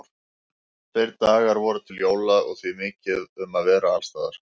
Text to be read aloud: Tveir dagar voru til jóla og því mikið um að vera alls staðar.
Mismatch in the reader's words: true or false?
false